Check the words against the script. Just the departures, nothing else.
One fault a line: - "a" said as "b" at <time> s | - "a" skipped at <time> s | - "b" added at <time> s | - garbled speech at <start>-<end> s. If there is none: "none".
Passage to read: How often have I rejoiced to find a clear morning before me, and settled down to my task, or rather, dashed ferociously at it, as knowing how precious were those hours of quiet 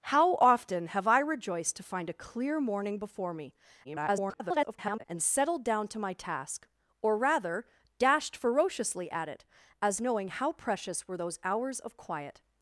- garbled speech at 3.8-5.0 s